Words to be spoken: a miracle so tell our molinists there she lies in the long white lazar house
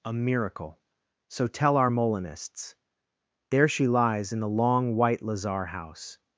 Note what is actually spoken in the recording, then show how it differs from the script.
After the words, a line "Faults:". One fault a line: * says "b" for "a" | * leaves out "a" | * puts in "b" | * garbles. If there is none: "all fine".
a miracle so tell our molinists there she lies in the long white lazar house
Faults:
all fine